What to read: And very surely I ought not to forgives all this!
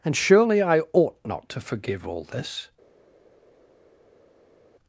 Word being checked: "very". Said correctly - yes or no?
no